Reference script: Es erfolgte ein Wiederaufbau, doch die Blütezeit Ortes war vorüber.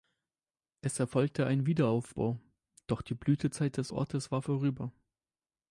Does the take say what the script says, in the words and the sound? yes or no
no